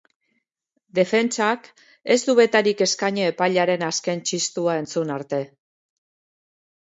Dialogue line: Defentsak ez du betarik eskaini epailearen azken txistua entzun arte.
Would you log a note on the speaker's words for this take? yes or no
no